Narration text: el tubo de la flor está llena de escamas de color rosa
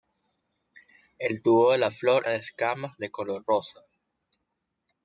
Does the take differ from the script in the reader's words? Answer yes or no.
yes